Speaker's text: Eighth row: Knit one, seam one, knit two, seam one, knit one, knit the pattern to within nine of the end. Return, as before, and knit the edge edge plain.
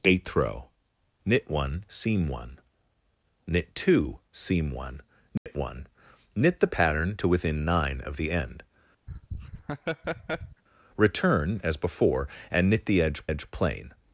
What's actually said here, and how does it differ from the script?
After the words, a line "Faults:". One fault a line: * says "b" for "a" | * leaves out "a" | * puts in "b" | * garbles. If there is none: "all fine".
Eighth row: Knit one, seam one, knit two, seam one, knit one, knit the pattern to within nine of the end. Return, as before, and knit the edge edge plain.
Faults:
all fine